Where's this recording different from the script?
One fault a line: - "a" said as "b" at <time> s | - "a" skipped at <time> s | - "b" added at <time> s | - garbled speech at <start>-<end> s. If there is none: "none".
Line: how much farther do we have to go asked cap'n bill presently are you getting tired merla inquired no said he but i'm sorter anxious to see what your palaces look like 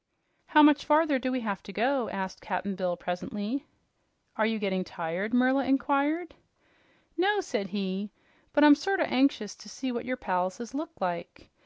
none